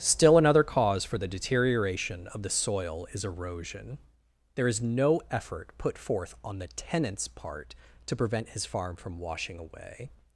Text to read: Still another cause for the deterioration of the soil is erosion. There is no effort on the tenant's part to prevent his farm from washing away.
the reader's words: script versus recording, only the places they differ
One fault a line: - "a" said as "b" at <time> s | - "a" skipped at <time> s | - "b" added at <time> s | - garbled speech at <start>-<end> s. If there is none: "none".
- "put forth" added at 5.8 s